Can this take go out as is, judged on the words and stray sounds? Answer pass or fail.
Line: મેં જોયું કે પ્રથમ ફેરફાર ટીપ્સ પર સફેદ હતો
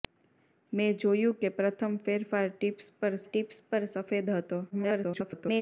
fail